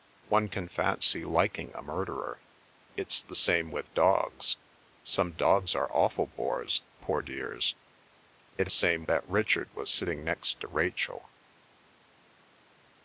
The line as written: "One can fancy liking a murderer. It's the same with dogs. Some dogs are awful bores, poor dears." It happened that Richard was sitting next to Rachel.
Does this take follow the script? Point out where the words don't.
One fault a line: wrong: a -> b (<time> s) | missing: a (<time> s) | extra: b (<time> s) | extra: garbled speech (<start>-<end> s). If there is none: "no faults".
wrong: happened -> same (8.7 s)